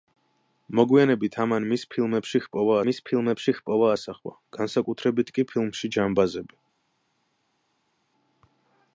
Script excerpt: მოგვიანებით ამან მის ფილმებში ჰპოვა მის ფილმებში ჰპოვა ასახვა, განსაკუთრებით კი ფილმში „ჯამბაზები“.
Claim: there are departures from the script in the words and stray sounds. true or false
false